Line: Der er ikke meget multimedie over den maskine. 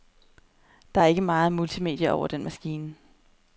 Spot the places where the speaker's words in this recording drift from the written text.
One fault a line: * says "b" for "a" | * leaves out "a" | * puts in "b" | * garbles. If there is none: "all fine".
all fine